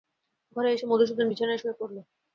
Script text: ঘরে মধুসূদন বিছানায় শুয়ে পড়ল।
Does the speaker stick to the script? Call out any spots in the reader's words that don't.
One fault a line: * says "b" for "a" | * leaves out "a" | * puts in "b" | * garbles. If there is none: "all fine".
* puts in "এসে"